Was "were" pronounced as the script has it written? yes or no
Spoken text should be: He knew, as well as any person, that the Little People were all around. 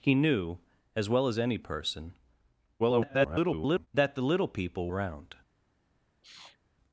no